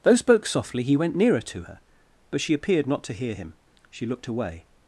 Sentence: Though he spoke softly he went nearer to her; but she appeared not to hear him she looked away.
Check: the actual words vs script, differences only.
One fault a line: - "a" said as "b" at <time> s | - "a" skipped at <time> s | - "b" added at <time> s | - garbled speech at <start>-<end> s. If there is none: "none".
- "he" skipped at 0.1 s